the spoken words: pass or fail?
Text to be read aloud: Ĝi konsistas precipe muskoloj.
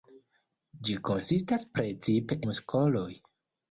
pass